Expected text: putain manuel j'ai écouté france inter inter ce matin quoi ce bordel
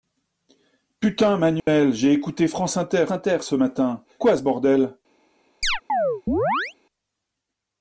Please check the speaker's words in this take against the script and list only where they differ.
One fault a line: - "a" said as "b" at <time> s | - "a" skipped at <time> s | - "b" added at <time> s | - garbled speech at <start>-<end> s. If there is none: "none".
none